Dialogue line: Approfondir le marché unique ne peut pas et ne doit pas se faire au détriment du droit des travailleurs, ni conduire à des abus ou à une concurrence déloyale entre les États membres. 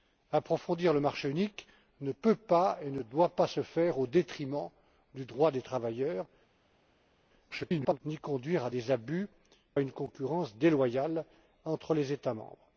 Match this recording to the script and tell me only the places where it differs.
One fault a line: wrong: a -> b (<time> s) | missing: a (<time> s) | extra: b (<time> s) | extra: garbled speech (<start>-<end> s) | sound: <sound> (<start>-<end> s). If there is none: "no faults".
extra: garbled speech (7.5-8.0 s)
missing: ou (9.3 s)